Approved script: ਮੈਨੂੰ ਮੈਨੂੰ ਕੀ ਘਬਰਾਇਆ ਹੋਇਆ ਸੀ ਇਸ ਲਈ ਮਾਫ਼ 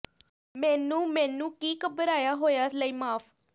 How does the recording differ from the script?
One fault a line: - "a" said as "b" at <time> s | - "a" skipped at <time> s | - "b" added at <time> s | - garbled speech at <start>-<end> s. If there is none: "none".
- "ਸੀ ਇਸ" skipped at 2.7 s